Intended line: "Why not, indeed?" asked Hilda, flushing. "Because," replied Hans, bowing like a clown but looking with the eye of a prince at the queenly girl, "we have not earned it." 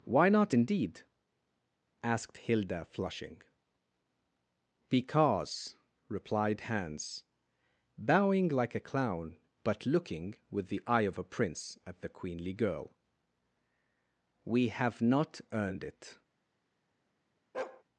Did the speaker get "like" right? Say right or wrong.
right